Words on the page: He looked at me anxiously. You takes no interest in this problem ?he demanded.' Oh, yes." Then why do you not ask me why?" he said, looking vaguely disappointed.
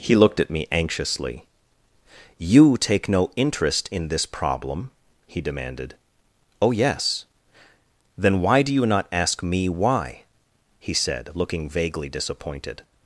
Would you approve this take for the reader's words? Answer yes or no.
no